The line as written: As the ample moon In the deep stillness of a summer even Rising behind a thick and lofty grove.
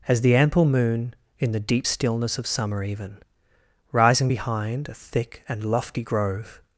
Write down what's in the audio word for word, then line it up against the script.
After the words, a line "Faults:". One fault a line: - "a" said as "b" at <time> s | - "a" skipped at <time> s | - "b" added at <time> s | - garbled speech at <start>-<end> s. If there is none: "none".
As the ample moon In the deep stillness of summer even Rising behind a thick and lofty grove.
Faults:
- "a" skipped at 2.5 s